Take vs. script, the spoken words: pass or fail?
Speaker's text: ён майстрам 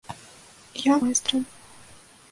pass